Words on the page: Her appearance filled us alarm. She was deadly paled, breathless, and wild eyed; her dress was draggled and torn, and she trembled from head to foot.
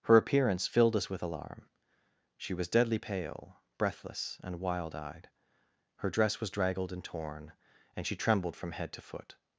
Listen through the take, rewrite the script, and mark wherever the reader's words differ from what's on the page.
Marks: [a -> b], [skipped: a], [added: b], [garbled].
Her appearance filled us [added: with] alarm. She was deadly [paled, -> pale] breathless, and wild eyed; her dress was draggled and torn, and she trembled from head to foot.